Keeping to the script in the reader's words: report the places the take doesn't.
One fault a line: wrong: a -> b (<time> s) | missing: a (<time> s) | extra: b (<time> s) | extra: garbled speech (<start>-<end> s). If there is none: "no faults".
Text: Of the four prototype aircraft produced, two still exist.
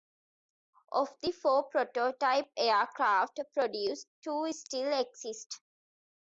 no faults